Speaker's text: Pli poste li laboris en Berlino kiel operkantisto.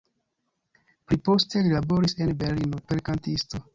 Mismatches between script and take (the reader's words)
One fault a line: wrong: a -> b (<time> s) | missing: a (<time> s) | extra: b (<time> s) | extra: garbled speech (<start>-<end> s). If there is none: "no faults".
missing: kiel (2.8 s)